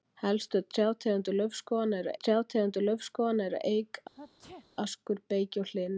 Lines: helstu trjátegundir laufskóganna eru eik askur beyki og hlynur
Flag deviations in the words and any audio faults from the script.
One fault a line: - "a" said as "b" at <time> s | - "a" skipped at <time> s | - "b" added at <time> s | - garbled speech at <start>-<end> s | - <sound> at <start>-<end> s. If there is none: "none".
- "trjátegundir laufskóganna eru" added at 2.2 s
- sneeze at 4.1-4.7 s